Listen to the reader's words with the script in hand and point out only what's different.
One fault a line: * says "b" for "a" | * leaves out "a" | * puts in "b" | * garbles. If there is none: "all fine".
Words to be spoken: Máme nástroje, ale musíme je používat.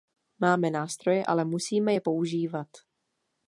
all fine